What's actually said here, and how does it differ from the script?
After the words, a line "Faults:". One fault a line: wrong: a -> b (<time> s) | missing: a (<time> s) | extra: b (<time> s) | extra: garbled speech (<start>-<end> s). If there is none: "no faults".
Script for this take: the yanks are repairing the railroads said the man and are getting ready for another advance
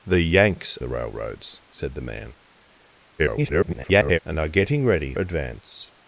the yanks the railroads said the man [garbled] and are getting ready advance
Faults:
missing: are repairing (0.8 s)
extra: garbled speech (3.2-4.2 s)
missing: for another (5.1 s)